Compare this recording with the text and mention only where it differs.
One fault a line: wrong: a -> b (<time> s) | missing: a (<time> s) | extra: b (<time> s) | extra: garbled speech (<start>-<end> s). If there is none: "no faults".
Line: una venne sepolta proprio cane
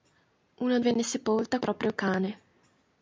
no faults